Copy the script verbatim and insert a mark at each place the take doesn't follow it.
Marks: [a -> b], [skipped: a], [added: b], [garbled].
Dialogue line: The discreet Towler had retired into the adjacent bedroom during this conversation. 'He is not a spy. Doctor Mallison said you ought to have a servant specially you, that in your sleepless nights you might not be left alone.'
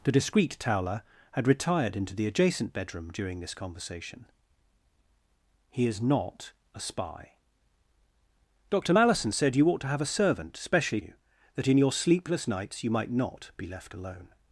The discreet Towler had retired into the adjacent bedroom during this conversation. 'He is not a spy. Doctor Mallison said you ought to have a servant specially you, that in your sleepless nights you might not be left alone.'